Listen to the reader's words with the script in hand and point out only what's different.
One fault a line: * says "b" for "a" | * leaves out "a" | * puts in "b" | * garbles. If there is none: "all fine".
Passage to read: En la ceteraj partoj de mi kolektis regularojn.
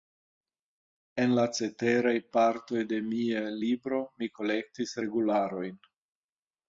* puts in "mia libro"